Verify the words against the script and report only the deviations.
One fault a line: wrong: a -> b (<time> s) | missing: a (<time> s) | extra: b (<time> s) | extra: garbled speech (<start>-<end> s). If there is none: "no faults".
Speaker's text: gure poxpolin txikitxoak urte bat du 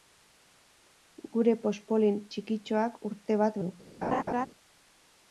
no faults